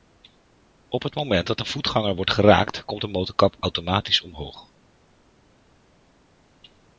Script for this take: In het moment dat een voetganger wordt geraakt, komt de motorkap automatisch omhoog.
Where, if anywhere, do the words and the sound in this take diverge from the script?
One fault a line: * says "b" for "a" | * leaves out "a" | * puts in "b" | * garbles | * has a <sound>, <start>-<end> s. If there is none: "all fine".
* says "Op" for "In"